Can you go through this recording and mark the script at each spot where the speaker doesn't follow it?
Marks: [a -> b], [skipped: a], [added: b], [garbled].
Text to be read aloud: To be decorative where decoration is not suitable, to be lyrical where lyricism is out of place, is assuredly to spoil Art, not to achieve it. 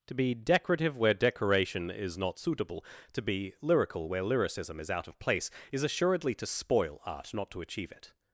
To be decorative where decoration is not suitable, to be lyrical where lyricism is out of place, is assuredly to spoil Art, not to achieve it.